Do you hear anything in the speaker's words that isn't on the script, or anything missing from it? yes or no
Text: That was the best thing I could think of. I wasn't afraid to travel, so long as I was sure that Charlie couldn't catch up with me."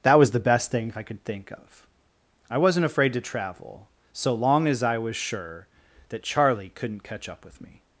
no